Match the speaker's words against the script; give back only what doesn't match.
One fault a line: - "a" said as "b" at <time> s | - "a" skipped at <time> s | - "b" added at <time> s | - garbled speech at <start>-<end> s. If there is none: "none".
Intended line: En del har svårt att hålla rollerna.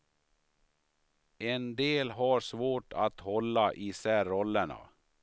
- "isär" added at 3.7 s